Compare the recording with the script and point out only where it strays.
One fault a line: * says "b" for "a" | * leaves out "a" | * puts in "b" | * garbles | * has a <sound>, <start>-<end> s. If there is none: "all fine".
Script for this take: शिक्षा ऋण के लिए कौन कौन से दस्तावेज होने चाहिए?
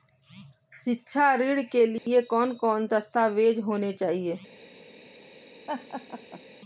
* has a dropout, 2.0-2.1 s
* leaves out "से"
* has a laugh, 5.7-6.4 s